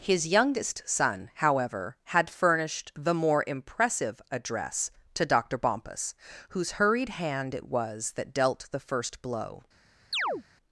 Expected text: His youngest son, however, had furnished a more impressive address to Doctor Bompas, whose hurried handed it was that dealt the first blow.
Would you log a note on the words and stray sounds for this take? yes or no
yes